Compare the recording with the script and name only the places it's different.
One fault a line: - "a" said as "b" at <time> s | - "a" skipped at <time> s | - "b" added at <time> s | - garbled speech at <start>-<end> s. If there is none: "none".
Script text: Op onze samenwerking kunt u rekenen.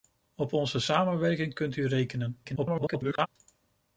- garbled speech at 2.4-3.3 s